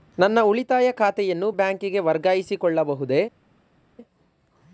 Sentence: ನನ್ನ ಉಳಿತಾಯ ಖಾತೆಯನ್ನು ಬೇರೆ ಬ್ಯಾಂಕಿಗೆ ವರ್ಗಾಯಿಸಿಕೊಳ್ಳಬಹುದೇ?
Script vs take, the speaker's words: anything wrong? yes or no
yes